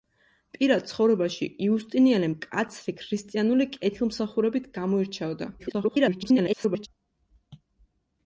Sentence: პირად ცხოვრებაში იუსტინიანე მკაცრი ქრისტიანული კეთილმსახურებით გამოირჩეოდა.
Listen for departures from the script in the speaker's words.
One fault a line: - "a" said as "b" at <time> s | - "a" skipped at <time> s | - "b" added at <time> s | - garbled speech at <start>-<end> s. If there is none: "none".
- garbled speech at 5.6-6.9 s